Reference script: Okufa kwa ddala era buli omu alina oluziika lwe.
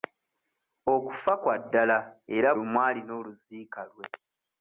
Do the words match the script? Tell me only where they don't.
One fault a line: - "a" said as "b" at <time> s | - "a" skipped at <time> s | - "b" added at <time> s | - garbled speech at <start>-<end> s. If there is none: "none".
- "buli" skipped at 2.5 s